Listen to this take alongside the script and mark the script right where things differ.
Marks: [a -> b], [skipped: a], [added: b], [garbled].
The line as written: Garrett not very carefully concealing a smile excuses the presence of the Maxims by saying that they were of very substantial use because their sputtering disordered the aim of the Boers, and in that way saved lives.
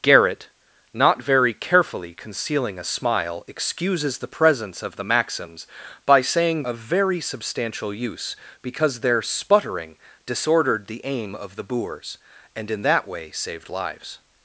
Garrett not very carefully concealing a smile excuses the presence of the Maxims by saying [skipped: that they were] of very substantial use because their sputtering disordered the aim of the Boers, and in that way saved lives.